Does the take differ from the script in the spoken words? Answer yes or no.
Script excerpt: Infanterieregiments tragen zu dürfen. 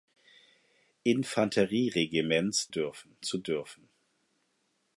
yes